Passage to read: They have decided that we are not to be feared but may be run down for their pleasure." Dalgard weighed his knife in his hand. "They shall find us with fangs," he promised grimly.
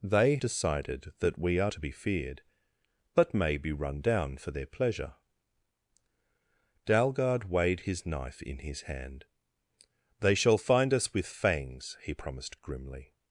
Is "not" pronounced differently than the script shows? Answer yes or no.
yes